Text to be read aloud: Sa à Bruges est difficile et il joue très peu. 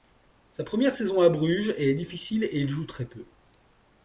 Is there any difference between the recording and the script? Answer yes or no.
yes